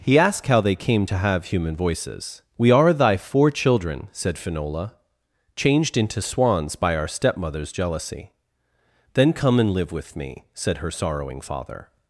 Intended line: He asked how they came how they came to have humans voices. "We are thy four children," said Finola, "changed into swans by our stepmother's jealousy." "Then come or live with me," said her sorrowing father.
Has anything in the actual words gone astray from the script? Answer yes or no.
yes